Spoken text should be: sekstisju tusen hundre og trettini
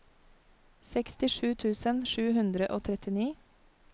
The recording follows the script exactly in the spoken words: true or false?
false